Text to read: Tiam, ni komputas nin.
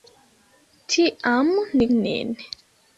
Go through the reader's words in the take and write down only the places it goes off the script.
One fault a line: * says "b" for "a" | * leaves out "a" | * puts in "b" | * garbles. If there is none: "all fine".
* leaves out "komputas"